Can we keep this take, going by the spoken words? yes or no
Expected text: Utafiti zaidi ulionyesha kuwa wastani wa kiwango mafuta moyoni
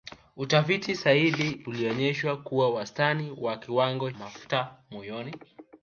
yes